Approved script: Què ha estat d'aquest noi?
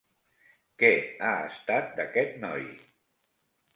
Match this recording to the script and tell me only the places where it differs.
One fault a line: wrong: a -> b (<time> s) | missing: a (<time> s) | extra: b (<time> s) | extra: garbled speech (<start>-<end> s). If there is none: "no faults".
no faults